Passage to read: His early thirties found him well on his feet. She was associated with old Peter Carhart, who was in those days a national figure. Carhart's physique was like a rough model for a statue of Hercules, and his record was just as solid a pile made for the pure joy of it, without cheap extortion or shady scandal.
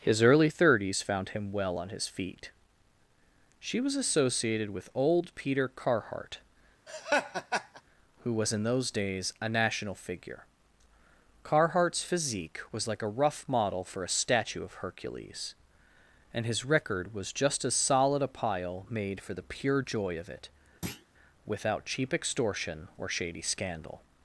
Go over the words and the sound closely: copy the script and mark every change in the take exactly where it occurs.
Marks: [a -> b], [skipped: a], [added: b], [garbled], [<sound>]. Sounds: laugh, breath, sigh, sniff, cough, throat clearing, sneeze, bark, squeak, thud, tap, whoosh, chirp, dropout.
His early thirties found him well on his feet. She was associated with old Peter Carhart, [laugh] who was in those days a national figure. Carhart's physique was like a rough model for a statue of Hercules, and his record was just as solid a pile made for the pure joy of it, [thud] without cheap extortion or shady scandal.